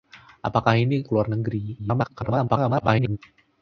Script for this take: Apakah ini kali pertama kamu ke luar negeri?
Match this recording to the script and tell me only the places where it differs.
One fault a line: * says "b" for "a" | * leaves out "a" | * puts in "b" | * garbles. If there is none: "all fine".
* leaves out "kali pertama kamu"
* garbles